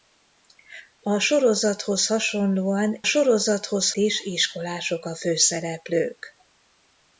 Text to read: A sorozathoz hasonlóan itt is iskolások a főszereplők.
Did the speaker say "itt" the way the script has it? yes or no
no